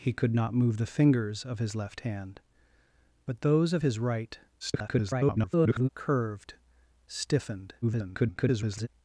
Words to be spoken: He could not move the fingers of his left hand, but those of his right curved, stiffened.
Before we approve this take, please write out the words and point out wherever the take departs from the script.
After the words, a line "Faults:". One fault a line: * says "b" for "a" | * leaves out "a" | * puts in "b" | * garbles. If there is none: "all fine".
He could not move the fingers of his left hand, but those of his right [garbled] curved, stiffened. [garbled]
Faults:
* garbles
* garbles